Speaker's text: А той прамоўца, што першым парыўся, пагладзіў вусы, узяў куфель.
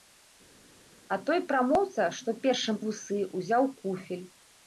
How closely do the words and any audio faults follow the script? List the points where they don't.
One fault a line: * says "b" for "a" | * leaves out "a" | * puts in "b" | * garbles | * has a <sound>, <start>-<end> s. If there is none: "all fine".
* leaves out "парыўся пагладзіў"